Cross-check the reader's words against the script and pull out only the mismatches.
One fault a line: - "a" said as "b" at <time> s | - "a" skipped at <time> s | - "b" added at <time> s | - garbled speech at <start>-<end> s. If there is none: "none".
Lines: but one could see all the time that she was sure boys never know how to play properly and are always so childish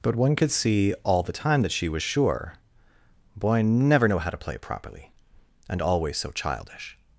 - "boys" said as "boy" at 3.4 s
- "are" skipped at 5.8 s